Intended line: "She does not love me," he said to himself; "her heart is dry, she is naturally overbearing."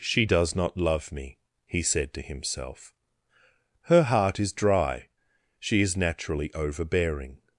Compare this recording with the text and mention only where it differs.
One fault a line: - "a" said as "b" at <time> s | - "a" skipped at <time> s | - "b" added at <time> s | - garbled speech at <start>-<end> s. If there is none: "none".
none